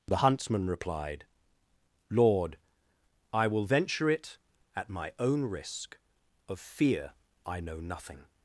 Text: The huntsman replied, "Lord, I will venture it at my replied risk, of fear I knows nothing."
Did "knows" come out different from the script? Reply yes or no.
yes